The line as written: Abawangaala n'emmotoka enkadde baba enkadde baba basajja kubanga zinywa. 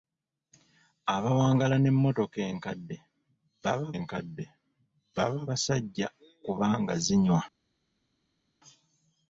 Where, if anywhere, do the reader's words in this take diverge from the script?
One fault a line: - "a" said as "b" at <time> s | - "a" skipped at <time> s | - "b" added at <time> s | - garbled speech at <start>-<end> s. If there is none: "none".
none